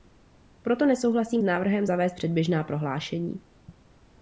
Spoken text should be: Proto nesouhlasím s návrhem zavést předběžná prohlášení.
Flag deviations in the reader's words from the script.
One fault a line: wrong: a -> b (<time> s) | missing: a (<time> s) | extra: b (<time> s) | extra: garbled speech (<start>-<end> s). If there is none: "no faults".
no faults